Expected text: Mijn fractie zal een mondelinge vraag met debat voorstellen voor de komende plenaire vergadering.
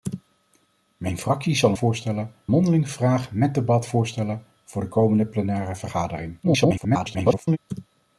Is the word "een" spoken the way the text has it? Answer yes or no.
no